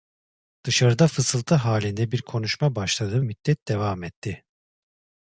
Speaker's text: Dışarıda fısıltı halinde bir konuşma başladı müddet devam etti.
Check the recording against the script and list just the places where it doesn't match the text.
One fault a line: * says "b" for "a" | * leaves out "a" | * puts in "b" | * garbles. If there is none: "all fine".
all fine